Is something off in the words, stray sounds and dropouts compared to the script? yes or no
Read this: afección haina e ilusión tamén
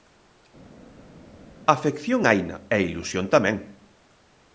no